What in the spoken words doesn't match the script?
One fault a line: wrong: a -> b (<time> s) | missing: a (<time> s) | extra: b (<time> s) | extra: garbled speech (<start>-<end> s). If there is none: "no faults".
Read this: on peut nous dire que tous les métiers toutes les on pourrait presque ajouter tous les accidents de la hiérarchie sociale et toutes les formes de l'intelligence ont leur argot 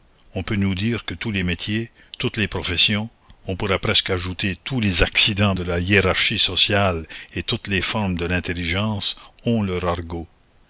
extra: professions (2.5 s)